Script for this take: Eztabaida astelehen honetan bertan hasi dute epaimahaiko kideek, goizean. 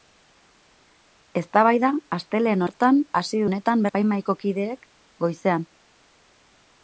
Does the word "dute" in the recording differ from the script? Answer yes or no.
yes